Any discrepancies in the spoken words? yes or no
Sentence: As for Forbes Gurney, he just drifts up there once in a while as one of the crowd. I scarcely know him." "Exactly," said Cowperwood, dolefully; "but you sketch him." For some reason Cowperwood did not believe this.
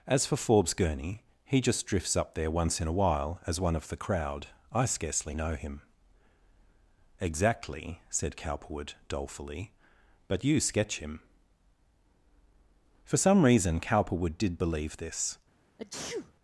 yes